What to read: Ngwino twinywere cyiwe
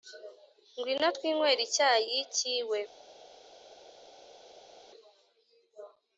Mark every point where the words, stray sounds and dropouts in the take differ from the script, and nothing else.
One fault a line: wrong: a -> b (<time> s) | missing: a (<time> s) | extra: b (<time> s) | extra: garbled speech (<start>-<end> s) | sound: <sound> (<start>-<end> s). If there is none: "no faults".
extra: icyayi (1.7 s)